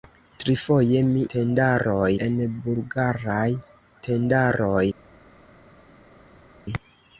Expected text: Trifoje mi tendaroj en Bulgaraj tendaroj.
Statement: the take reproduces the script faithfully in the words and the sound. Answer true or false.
true